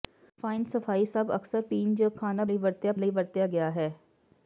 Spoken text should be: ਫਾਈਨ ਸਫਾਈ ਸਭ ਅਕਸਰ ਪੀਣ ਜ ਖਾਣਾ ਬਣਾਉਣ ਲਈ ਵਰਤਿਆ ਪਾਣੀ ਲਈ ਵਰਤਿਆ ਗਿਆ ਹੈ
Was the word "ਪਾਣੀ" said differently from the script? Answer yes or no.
yes